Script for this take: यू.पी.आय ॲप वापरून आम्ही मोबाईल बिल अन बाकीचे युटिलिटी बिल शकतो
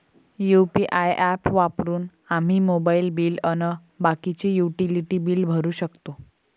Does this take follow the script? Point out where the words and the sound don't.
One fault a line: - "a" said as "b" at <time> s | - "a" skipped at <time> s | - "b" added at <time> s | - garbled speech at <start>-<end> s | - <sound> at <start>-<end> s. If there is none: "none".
- "भरू" added at 5.5 s